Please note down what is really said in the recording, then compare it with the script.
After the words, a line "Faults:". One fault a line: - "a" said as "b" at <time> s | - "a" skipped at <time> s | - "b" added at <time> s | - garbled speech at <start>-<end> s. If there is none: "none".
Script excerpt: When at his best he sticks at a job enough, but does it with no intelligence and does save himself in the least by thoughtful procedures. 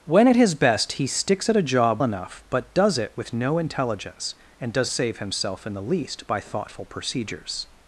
When at his best he sticks at a job enough, but does it with no intelligence and does save himself in the least by thoughtful procedures.
Faults:
none